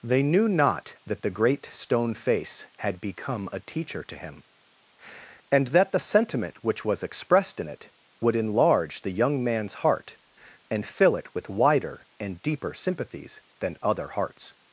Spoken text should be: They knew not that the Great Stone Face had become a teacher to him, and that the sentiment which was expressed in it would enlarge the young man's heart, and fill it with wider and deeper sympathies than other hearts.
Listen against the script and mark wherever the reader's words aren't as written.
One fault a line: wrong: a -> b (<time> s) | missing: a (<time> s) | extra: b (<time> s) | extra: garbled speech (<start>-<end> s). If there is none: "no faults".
no faults